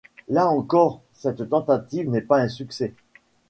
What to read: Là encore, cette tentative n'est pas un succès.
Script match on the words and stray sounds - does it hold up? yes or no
yes